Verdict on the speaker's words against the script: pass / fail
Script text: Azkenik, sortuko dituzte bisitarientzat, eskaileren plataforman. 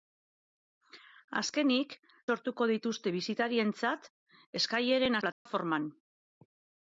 pass